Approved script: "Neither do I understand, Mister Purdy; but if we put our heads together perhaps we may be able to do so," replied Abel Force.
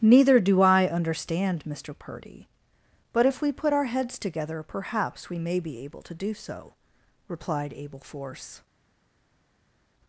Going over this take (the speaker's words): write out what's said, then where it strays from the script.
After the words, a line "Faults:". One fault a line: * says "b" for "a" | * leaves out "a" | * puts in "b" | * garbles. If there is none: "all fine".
"Neither do I understand, Mister Purdy; but if we put our heads together perhaps we may be able to do so," replied Abel Force.
Faults:
all fine